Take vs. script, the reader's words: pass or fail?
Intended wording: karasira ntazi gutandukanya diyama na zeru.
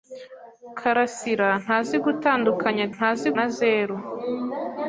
fail